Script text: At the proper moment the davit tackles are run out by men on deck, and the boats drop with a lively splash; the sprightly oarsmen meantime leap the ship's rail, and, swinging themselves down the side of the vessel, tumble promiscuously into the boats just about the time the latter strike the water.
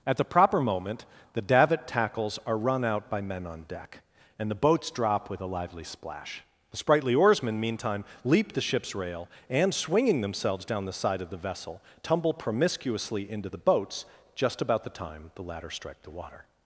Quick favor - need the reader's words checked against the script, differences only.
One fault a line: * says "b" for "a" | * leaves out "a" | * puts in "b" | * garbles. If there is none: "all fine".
all fine